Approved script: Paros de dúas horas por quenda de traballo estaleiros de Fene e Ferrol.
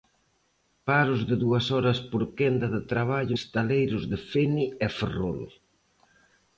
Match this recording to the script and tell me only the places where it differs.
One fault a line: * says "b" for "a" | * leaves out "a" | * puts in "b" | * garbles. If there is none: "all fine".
all fine